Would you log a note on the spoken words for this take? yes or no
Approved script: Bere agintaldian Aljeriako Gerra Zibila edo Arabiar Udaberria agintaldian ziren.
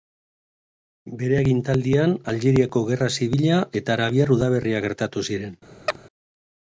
yes